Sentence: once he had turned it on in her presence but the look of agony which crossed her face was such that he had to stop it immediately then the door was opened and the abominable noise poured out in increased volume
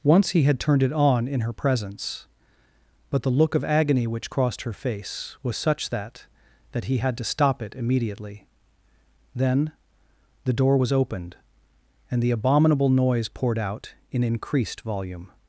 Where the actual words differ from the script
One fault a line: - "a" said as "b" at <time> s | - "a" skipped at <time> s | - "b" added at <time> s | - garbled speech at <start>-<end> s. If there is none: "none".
- "that" added at 6.7 s